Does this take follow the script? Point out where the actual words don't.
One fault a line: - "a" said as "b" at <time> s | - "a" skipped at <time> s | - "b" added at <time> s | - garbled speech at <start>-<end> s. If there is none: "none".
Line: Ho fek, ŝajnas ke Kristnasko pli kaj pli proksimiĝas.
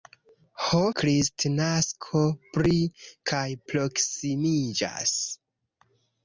- "fek ŝajnas ke" skipped at 0.8 s
- "pli" skipped at 3.4 s